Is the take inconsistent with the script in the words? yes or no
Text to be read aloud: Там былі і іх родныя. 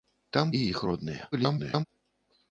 yes